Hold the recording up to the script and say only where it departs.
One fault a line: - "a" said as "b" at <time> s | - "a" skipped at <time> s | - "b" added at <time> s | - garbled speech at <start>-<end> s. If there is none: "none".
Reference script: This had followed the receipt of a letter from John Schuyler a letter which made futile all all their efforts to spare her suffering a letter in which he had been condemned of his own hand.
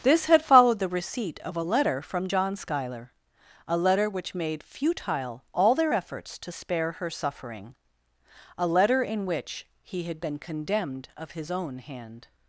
- "all" skipped at 5.7 s